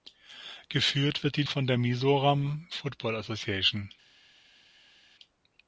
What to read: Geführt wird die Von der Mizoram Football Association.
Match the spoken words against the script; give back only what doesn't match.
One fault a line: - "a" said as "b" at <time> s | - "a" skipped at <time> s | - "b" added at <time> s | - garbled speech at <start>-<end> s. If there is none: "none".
none